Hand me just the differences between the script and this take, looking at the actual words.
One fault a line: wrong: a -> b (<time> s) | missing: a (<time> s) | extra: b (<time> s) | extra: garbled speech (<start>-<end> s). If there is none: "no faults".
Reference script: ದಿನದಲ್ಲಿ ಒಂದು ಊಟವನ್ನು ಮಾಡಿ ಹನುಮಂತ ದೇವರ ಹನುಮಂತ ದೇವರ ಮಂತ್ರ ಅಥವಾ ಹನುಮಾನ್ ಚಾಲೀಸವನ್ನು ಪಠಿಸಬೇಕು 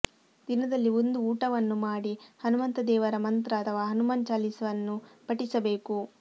missing: ಹನುಮಂತ ದೇವರ (3.2 s)